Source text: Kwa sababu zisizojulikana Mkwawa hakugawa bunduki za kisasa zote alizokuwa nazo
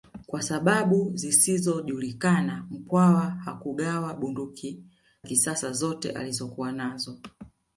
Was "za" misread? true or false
true